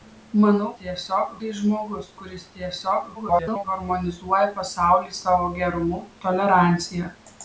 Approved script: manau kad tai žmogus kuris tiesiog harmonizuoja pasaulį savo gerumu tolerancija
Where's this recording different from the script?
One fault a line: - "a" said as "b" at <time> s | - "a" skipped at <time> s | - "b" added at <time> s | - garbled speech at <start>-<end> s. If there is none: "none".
- "kad" said as "tiesiog" at 0.8 s
- garbled speech at 3.1-3.6 s